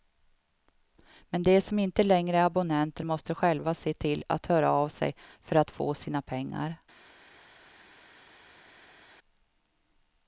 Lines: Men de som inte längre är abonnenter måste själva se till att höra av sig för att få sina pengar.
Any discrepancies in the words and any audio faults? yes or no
no